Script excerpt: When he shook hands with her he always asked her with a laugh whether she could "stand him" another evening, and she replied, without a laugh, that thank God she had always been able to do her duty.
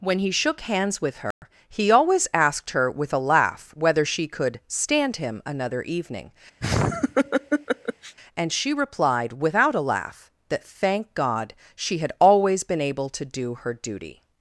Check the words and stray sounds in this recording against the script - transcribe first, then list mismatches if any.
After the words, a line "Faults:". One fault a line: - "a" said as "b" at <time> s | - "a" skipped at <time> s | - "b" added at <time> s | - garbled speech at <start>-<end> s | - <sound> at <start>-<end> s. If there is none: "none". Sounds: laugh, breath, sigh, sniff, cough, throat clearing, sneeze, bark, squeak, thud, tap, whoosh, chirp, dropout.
When he shook hands with her he always asked her with a laugh whether she could "stand him" another evening, and she replied, without a laugh, that thank God she had always been able to do her duty.
Faults:
- dropout at 1.3-1.4 s
- laugh at 6.6-8.2 s